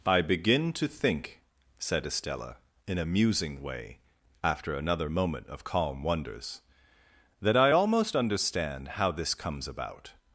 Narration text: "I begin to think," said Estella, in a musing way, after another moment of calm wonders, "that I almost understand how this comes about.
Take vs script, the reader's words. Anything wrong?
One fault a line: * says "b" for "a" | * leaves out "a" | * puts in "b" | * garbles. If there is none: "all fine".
all fine